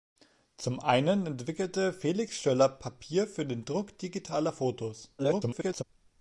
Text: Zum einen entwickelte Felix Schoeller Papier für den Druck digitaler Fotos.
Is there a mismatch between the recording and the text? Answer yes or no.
yes